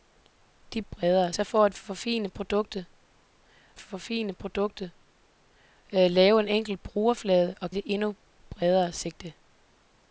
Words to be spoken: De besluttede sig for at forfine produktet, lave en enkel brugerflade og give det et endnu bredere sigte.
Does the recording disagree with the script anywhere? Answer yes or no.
yes